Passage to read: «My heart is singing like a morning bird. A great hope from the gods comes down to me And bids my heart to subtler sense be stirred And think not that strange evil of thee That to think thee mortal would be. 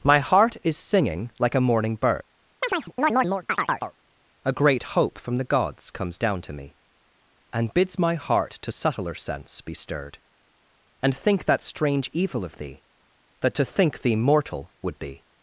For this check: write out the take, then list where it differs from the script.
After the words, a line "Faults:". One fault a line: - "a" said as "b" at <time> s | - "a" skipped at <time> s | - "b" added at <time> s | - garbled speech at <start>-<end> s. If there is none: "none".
«My heart is singing like a morning bird. A great hope from the gods comes down to me And bids my heart to subtler sense be stirred And think that strange evil of thee That to think thee mortal would be.
Faults:
- "not" skipped at 11.5 s